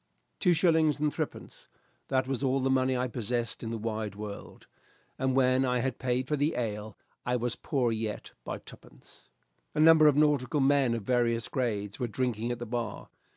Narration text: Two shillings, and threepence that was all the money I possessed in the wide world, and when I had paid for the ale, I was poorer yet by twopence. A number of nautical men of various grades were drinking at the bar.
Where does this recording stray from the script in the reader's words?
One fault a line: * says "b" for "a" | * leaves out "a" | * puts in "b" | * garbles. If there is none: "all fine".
all fine